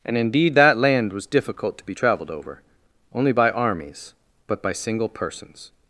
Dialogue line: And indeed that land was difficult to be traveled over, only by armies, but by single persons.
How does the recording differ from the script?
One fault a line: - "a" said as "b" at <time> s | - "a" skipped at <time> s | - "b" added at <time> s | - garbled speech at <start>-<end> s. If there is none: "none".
none